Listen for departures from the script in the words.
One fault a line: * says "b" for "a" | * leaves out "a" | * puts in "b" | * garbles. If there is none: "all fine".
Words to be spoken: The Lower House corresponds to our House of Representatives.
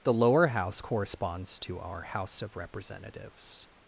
all fine